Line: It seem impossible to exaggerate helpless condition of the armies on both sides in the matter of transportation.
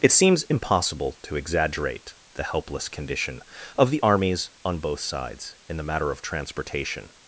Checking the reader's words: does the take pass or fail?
fail